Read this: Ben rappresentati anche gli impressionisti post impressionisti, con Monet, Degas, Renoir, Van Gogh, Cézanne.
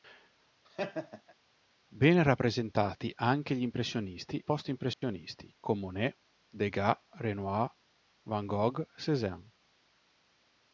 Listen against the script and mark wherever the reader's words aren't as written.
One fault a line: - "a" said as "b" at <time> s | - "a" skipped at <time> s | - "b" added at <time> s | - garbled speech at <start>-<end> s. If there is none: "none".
none